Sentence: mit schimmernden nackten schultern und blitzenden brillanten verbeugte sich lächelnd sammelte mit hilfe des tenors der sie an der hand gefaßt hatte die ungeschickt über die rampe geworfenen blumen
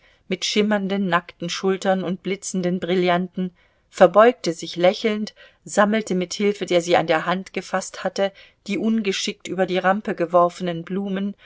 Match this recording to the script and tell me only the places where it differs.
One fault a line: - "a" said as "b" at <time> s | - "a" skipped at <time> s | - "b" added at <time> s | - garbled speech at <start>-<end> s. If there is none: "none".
- "des tenors" skipped at 6.7 s